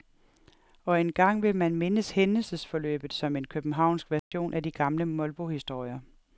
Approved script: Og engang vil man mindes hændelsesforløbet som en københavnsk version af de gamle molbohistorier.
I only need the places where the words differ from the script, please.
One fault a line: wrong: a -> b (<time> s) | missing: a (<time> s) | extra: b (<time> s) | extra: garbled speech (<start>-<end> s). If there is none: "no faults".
no faults